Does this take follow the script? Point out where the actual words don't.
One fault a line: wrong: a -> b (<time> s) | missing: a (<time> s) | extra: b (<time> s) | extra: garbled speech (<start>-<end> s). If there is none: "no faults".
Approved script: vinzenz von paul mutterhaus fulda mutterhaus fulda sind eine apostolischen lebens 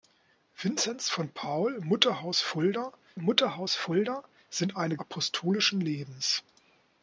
no faults